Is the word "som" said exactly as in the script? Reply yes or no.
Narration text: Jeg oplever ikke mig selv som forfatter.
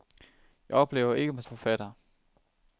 no